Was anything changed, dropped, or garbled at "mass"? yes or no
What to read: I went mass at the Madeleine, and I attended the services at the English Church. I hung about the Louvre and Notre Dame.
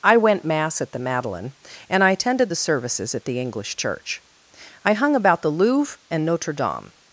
no